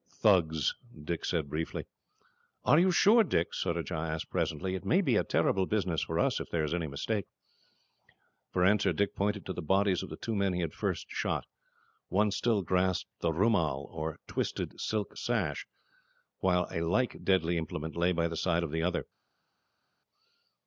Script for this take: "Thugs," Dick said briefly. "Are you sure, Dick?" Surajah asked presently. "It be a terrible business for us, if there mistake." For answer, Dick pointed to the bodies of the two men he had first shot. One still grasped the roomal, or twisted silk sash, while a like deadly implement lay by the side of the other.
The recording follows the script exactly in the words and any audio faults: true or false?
false